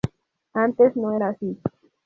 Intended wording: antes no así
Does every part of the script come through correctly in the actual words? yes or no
no